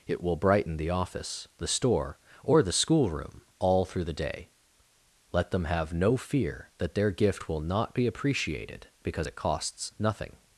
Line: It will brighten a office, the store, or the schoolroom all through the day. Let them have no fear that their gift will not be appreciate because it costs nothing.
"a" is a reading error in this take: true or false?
true